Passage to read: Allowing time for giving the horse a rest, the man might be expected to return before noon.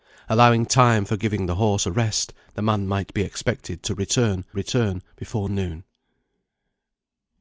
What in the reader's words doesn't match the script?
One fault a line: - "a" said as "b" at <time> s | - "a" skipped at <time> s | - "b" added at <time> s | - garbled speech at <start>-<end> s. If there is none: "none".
- "return" added at 4.5 s